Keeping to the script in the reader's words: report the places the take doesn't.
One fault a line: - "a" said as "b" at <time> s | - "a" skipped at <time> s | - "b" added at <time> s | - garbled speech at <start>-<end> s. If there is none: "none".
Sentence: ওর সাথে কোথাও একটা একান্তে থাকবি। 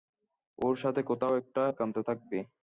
none